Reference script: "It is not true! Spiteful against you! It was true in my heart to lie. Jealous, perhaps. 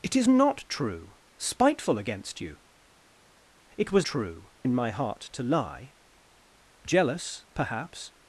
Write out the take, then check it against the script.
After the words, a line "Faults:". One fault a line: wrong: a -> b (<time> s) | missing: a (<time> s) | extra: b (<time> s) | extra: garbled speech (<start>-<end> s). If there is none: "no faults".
"It is not true! Spiteful against you! It was true in my heart to lie. Jealous, perhaps.
Faults:
no faults